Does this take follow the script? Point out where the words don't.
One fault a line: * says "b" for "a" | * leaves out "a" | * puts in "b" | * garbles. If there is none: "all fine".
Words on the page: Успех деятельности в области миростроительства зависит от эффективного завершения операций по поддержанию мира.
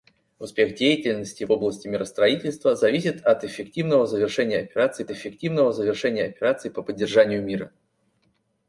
* puts in "эффективного завершения операций"